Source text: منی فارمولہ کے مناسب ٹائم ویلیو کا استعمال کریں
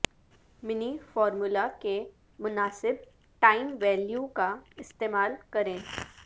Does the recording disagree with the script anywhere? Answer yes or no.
no